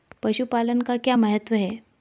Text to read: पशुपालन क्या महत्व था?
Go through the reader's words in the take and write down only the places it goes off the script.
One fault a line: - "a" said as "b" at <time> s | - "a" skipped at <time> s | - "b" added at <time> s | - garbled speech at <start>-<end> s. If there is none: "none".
- "का" added at 0.8 s
- "था" said as "है" at 1.5 s